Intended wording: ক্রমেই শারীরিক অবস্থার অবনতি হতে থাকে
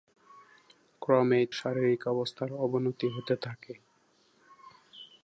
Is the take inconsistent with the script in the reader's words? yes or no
no